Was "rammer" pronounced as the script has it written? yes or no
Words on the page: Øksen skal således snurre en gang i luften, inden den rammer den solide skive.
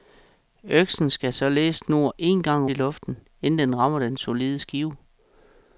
yes